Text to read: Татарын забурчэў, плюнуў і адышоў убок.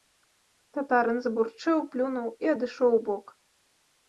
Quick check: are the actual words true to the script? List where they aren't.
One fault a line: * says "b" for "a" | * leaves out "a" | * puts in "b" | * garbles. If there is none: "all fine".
all fine